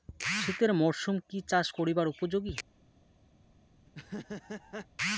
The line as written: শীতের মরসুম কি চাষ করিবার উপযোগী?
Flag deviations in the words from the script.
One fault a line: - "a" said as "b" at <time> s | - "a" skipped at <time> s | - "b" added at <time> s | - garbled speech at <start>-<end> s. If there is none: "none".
none